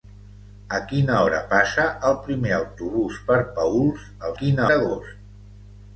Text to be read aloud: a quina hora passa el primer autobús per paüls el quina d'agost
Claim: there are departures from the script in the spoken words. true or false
false